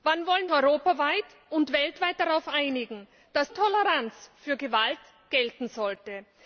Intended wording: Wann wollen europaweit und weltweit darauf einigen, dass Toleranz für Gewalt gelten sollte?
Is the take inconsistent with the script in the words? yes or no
no